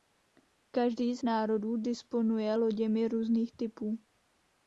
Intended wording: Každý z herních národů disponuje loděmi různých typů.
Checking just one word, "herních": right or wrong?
wrong